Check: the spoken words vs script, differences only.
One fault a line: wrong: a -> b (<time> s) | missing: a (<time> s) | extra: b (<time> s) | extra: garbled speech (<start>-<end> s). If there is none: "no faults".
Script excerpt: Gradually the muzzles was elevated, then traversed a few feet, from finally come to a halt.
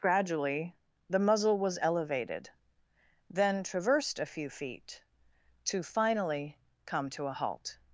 wrong: muzzles -> muzzle (1.2 s)
wrong: from -> to (5.7 s)